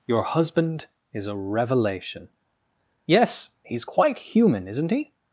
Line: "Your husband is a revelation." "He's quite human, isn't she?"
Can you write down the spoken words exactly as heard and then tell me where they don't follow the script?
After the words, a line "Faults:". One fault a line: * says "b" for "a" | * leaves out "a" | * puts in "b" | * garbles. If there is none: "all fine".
"Your husband is a revelation." "Yes, he's quite human, isn't he?"
Faults:
* puts in "Yes"
* says "he" for "she"